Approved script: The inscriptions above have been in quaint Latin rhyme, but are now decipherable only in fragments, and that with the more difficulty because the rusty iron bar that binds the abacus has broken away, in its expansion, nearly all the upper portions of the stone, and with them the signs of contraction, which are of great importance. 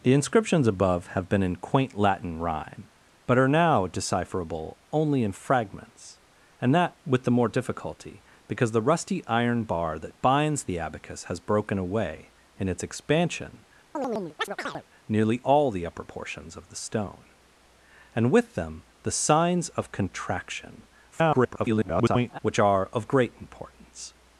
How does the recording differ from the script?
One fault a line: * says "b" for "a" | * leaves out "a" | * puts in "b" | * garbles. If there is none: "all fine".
* garbles